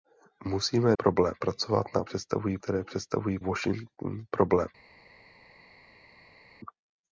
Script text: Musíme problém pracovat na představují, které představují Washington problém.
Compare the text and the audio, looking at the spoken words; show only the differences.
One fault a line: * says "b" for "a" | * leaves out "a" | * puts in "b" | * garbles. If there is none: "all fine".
all fine